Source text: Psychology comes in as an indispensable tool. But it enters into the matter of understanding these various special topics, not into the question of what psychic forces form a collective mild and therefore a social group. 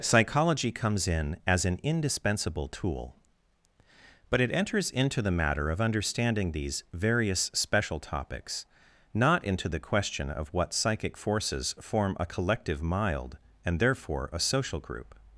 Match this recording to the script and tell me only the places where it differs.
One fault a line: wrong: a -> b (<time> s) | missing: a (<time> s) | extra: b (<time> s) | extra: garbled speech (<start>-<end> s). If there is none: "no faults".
no faults